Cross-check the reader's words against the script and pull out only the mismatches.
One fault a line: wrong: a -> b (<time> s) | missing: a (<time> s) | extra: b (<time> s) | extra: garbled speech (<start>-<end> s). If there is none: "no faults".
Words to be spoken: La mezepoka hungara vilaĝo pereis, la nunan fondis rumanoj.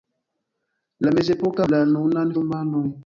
missing: hungara vilaĝo pereis (1.7 s)
missing: fondis (2.3 s)